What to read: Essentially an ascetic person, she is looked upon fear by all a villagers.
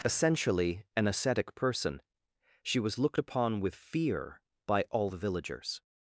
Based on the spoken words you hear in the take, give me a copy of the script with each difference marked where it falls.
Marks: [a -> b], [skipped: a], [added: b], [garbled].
Essentially an ascetic person, she [is -> was] looked upon [added: with] fear by all [a -> the] villagers.